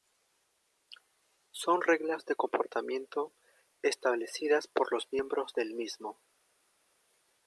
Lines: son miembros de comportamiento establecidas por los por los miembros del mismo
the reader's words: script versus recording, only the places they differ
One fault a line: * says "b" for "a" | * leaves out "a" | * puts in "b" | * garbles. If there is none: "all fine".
* says "reglas" for "miembros"
* leaves out "por los"